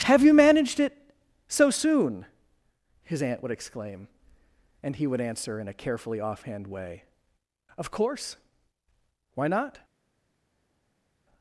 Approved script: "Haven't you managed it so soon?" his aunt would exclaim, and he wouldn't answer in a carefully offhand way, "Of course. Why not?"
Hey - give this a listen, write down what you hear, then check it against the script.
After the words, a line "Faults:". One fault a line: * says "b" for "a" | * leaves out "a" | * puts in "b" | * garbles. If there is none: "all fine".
"Have you managed it so soon?" his aunt would exclaim, and he would answer in a carefully offhand way, "Of course. Why not?"
Faults:
* says "Have" for "Haven't"
* says "would" for "wouldn't"